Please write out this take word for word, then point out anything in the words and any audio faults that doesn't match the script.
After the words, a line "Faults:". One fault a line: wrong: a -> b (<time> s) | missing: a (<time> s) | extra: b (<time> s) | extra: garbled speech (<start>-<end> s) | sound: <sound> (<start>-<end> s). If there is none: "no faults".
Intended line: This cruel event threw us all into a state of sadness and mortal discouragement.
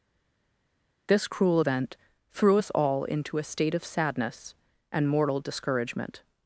This cruel event threw us all into a state of sadness and mortal discouragement.
Faults:
no faults